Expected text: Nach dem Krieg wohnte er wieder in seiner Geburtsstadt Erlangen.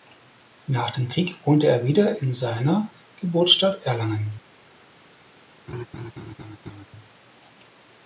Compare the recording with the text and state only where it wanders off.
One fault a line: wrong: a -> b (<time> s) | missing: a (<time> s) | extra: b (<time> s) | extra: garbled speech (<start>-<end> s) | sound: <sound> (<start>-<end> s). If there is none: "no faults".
sound: laugh (5.7-6.9 s)